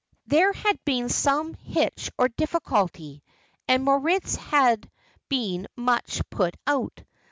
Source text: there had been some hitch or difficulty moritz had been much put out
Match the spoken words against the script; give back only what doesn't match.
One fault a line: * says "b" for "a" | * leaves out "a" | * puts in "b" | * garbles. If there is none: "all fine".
* puts in "and"